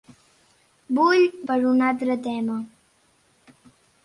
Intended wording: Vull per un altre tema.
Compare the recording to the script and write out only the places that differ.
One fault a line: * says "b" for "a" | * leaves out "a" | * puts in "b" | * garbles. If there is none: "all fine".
all fine